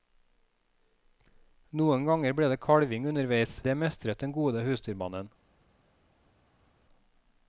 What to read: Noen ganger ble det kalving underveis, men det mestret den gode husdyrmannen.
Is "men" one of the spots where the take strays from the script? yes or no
yes